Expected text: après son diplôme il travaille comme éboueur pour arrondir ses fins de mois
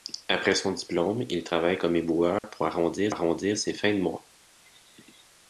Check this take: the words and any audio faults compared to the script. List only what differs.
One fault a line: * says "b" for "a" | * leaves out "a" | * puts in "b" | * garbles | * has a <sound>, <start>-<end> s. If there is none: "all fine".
* has a dropout, 2.4-2.4 s
* puts in "arrondir"